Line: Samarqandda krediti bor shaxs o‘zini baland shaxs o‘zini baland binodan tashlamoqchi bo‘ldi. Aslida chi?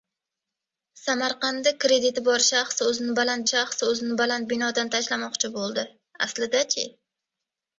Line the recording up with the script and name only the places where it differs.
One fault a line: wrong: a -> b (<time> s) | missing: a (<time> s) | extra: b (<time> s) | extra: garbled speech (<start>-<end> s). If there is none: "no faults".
no faults